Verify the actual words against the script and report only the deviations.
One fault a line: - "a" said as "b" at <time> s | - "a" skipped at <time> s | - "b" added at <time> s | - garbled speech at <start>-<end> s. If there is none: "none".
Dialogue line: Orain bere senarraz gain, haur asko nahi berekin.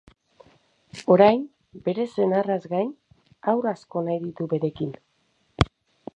- "ditu" added at 4.3 s